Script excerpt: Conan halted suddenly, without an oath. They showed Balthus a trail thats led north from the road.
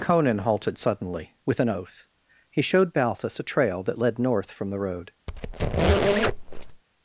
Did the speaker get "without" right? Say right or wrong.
wrong